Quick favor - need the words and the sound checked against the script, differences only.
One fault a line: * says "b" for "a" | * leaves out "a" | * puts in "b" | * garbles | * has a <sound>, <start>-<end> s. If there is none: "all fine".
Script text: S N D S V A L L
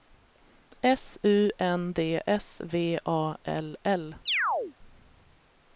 * puts in "U"
* has a chirp, 4.3-4.7 s